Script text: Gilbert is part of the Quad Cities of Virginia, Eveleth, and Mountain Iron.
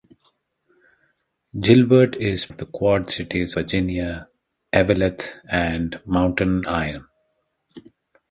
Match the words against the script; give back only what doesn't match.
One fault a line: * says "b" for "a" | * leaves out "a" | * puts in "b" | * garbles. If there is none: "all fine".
* leaves out "part"
* leaves out "of"